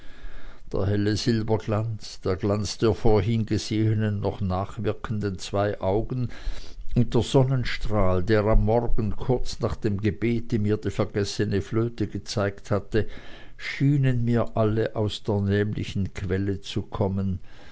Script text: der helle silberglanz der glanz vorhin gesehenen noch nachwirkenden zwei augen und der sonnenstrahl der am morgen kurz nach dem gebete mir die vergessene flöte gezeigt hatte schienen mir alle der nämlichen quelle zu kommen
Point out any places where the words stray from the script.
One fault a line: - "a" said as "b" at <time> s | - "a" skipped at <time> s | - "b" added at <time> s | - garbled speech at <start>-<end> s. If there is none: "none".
- "der" added at 2.8 s
- "aus" added at 14.9 s